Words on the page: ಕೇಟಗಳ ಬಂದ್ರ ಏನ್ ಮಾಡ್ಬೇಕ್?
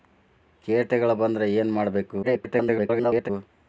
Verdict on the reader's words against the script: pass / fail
fail